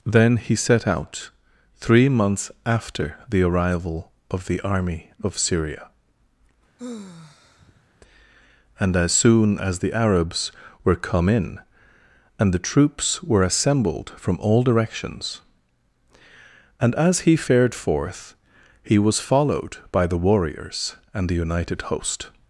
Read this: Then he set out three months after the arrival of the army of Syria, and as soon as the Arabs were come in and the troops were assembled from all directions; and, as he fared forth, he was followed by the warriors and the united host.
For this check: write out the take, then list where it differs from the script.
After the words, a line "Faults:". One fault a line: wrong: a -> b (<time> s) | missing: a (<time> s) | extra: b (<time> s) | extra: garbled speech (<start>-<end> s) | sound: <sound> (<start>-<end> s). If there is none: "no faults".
Then he set out three months after the arrival of the army of Syria, and as soon as the Arabs were come in and the troops were assembled from all directions; and, as he fared forth, he was followed by the warriors and the united host.
Faults:
sound: sigh (6.8-7.9 s)